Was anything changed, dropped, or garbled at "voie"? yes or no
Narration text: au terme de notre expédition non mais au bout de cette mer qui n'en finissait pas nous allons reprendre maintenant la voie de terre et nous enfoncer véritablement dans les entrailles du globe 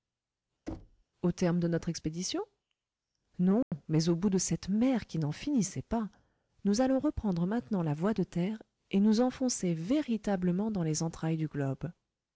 no